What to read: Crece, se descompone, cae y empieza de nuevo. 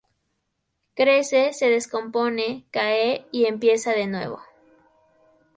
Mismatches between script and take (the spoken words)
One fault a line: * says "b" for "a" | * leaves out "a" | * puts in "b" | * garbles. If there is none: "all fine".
all fine